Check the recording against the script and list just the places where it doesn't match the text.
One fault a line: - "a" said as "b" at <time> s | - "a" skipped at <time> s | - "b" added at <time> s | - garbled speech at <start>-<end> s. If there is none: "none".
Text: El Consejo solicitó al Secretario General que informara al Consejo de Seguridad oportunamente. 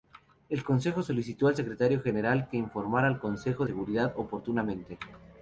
- "de" skipped at 3.6 s